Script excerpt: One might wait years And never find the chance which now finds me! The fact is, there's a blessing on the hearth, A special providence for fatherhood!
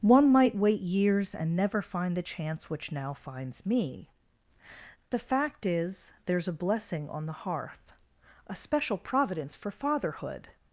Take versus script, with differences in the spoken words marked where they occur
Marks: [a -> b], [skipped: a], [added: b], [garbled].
One might wait years And never find the chance which now finds me! The fact is, there's a blessing on the hearth, A special providence for fatherhood!